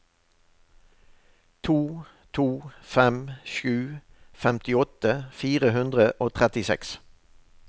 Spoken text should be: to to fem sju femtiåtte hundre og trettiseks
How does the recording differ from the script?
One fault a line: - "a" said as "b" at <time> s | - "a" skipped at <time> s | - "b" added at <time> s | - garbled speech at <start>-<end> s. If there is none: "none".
- "fire" added at 5.4 s